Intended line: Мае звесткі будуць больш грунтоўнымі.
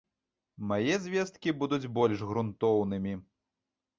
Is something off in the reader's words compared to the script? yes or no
no